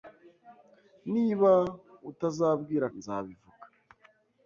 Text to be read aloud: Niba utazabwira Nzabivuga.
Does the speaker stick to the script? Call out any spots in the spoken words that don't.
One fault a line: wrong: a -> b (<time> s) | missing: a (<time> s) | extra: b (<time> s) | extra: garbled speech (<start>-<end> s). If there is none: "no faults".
no faults